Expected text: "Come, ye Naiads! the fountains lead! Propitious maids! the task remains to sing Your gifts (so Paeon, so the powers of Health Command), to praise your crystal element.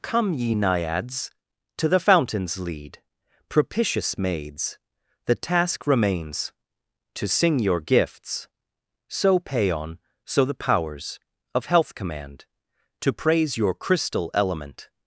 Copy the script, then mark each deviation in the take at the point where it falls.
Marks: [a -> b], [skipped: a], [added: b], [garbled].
"Come, ye Naiads! [added: to] the fountains lead! Propitious maids! the task remains to sing Your gifts (so Paeon, so the powers of Health Command), to praise your crystal element.